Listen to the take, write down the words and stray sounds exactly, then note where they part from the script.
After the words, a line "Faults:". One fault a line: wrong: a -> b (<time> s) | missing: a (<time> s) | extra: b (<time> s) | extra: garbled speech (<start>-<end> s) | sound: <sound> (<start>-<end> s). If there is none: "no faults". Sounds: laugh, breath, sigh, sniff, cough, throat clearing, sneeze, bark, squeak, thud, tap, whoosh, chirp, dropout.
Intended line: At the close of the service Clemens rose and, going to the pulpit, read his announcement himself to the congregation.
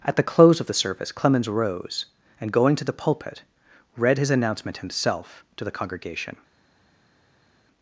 At the close of the service Clemens rose and, going to the pulpit, read his announcement himself to the congregation.
Faults:
no faults